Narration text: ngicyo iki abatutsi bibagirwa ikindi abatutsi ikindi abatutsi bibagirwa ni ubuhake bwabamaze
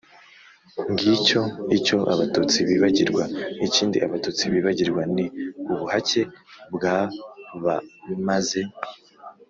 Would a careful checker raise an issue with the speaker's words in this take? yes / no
yes